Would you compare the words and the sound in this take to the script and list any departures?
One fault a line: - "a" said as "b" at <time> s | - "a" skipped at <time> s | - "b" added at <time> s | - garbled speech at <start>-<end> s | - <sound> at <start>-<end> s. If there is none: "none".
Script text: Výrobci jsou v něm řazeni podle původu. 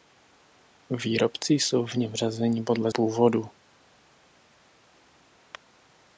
none